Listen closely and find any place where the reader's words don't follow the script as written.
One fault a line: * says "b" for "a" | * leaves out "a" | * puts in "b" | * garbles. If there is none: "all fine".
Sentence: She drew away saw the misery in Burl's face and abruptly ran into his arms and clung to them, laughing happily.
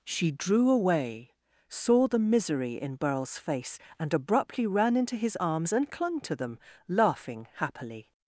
all fine